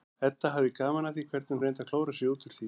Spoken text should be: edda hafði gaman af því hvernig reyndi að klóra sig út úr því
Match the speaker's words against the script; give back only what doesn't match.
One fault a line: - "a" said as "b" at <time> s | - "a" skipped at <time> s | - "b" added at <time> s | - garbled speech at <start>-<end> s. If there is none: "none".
none